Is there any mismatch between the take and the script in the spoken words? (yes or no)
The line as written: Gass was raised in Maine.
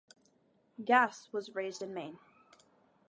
no